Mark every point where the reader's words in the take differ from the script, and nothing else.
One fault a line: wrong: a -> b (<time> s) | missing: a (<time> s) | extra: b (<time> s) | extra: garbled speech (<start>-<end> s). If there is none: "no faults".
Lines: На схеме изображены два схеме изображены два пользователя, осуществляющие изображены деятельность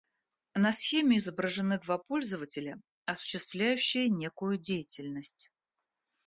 missing: схеме изображены два (2.0 s)
wrong: изображены -> некую (4.1 s)